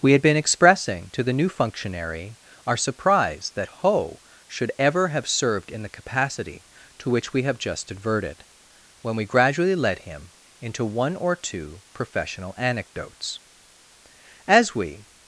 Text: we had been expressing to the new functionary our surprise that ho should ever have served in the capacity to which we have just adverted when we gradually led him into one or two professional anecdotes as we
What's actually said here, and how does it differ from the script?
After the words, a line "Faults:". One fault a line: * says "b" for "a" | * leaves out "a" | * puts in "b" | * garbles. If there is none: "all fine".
we had been expressing to the new functionary our surprise that ho should ever have served in the capacity to which we have just adverted when we gradually led him into one or two professional anecdotes as we
Faults:
all fine